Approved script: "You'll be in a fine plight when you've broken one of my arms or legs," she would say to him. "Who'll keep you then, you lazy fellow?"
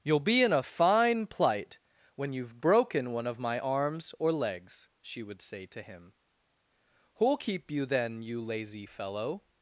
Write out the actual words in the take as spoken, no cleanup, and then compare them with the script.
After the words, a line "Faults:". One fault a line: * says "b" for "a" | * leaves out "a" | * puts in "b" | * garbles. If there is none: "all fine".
"You'll be in a fine plight when you've broken one of my arms or legs," she would say to him. "Who'll keep you then, you lazy fellow?"
Faults:
all fine